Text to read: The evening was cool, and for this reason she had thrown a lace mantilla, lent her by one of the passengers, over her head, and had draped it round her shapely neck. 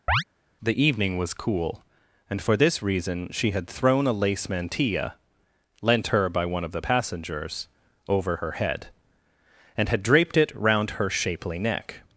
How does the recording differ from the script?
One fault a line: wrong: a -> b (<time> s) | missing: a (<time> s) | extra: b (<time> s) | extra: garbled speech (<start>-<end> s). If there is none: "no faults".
no faults